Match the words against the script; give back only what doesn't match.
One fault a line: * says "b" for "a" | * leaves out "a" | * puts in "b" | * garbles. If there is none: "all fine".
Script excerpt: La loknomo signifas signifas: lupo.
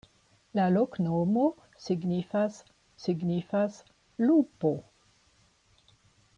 all fine